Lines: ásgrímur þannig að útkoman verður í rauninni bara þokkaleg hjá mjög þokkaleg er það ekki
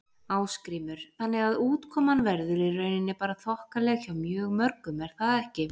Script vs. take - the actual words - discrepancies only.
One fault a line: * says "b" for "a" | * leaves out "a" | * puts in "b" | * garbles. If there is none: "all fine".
* says "mörgum" for "þokkaleg"